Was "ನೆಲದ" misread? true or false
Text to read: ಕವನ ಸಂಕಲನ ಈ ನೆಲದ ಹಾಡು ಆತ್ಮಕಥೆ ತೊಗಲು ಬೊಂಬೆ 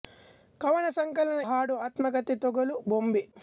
true